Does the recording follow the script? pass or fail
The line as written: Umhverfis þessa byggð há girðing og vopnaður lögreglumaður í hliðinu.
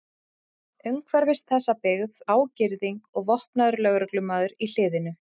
pass